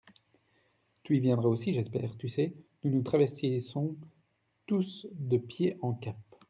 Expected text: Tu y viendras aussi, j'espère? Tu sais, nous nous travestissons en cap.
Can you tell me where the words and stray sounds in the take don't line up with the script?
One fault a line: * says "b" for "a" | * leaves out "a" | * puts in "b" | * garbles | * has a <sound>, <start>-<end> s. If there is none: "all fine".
* puts in "tous de pied"